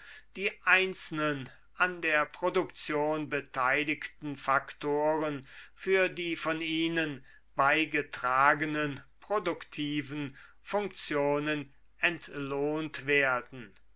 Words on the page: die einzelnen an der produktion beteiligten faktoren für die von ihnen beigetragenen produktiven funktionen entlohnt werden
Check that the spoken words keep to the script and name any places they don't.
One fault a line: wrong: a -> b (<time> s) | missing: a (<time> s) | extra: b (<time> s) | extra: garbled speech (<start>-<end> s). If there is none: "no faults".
no faults